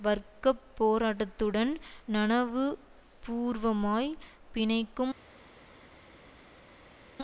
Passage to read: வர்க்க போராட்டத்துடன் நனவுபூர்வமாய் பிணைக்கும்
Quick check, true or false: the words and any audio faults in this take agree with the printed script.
true